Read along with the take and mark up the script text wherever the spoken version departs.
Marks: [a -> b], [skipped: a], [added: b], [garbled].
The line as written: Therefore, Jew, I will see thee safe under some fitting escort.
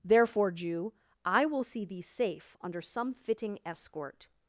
Therefore, Jew, I will see thee safe under some fitting escort.